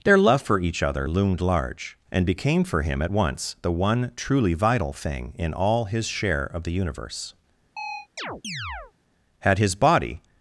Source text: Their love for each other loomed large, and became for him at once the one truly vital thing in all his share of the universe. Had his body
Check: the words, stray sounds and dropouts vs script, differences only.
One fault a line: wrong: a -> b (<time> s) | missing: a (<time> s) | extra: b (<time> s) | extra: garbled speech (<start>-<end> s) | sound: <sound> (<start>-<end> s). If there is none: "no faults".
sound: chirp (7.8-8.9 s)